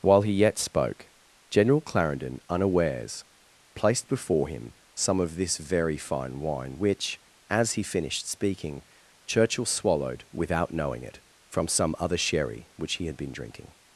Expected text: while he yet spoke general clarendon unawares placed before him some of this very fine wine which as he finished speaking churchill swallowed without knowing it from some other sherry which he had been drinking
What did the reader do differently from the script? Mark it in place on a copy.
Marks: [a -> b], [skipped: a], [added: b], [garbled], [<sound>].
while he yet spoke general clarendon unawares placed before him some of this very fine wine which as he finished speaking churchill swallowed without knowing it from some other sherry which he had been drinking